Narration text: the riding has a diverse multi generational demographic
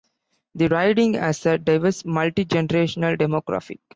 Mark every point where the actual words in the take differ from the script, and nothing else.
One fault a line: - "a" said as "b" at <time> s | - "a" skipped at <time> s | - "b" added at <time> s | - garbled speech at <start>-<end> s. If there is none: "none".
none